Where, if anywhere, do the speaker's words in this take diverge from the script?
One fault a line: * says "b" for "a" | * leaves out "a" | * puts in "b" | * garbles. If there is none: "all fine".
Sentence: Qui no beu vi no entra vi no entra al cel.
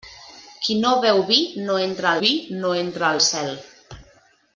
all fine